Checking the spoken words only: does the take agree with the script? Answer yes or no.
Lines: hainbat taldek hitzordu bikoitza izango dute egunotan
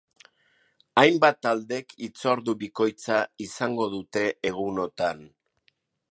yes